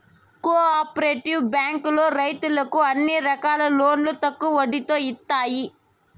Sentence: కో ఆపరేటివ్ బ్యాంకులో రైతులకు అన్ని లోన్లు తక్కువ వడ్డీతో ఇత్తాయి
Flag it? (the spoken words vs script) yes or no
yes